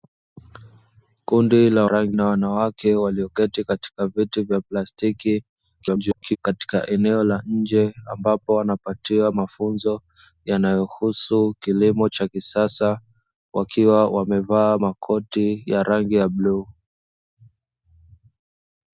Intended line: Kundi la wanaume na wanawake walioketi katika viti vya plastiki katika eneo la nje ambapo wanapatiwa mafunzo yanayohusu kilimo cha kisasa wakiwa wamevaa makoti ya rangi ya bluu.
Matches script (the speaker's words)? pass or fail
fail